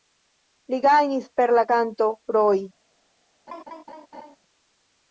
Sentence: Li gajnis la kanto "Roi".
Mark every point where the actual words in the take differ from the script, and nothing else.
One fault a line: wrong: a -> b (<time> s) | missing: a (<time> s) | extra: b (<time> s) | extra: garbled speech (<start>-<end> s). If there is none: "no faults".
extra: per (1.4 s)